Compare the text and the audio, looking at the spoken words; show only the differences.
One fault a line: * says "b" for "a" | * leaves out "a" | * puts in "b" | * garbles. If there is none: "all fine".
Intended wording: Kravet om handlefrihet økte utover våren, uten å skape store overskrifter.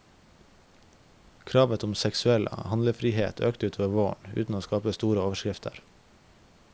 * puts in "seksuell"